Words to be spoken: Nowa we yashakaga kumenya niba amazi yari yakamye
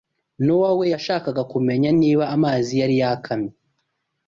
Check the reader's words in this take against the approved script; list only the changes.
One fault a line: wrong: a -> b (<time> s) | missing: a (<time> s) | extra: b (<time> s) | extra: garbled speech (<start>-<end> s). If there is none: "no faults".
no faults